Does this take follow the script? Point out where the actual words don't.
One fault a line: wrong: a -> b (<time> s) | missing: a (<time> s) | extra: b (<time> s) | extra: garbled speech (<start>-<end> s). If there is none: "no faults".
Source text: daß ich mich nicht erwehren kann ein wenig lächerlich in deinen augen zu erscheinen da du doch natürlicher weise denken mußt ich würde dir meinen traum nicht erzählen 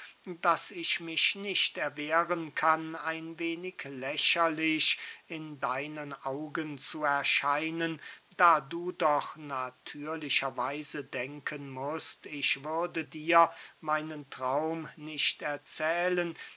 no faults